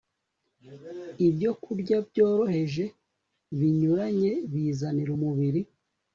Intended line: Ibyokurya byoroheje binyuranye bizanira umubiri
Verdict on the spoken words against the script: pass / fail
pass